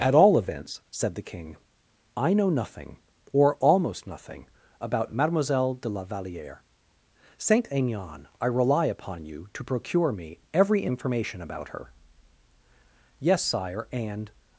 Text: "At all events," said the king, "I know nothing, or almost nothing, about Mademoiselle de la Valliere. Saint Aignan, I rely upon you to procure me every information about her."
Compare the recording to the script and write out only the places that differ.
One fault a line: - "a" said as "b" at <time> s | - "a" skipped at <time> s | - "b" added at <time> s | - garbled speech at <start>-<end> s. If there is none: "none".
- "Yes sire and" added at 13.2 s